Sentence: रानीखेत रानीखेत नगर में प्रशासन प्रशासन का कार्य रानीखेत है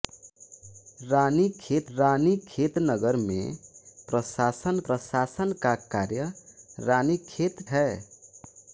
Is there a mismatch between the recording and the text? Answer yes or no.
no